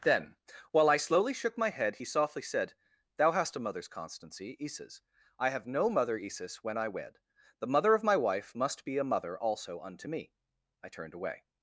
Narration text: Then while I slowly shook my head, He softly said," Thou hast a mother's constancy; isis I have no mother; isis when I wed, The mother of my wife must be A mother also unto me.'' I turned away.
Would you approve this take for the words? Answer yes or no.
yes